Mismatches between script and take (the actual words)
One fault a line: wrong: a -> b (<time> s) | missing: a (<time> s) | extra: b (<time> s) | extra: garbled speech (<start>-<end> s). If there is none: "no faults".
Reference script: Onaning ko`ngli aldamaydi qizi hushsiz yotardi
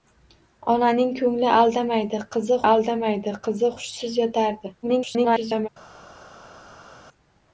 extra: aldamaydi qizi (2.7 s)
extra: garbled speech (4.8-5.7 s)